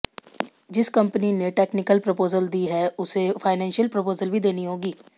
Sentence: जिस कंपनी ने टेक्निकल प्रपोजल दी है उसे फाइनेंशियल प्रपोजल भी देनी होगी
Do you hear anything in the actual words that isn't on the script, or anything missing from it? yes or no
no